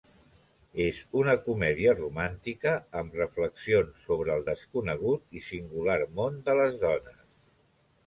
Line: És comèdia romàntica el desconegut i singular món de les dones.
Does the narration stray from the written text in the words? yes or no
yes